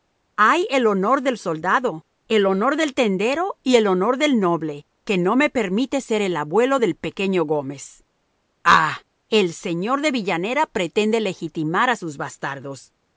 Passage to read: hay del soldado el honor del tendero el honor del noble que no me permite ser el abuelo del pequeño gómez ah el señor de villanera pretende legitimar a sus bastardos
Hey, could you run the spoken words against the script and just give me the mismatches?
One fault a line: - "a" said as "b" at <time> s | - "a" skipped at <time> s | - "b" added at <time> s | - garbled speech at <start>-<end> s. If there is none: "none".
- "el honor" added at 0.7 s
- "y" added at 3.6 s